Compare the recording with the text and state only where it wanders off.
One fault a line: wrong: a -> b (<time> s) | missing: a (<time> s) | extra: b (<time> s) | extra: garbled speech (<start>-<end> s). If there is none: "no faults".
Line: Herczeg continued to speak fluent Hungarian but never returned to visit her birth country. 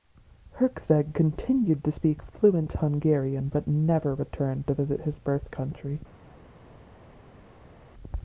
wrong: her -> his (5.0 s)